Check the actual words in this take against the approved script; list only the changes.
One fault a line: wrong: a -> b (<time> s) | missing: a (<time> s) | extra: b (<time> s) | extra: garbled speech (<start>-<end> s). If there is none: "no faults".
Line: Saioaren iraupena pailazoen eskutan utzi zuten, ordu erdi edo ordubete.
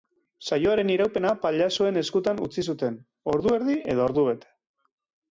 no faults